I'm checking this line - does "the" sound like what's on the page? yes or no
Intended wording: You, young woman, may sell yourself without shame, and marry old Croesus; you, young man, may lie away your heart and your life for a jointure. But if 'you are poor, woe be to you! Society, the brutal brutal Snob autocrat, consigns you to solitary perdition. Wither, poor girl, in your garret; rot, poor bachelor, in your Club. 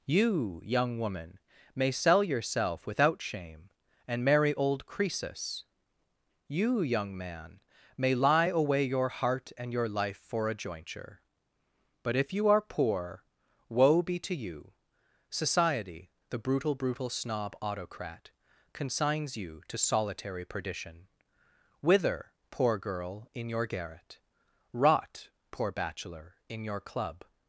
yes